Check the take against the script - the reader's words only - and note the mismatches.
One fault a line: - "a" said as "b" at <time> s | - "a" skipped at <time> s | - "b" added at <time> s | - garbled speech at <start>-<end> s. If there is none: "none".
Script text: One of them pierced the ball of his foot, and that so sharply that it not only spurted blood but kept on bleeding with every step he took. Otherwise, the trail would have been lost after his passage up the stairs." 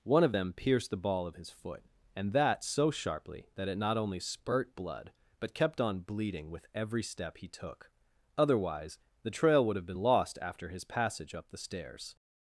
- "spurted" said as "spurt" at 4.2 s